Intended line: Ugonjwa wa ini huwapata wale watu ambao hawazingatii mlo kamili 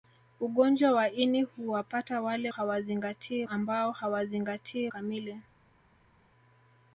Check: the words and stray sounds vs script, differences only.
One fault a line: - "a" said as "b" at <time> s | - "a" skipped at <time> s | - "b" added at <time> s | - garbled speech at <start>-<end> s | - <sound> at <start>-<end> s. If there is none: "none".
- "watu" said as "hawazingatii" at 2.5 s
- "mlo" skipped at 4.9 s